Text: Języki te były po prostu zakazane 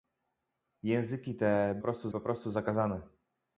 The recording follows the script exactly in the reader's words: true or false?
false